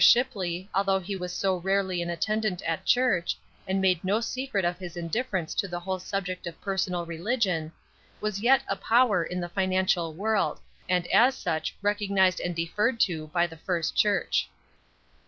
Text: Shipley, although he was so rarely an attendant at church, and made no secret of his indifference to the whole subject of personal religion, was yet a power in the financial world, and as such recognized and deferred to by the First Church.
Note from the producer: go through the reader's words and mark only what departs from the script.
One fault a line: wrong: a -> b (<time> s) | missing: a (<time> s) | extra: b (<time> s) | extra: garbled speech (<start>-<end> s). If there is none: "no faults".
no faults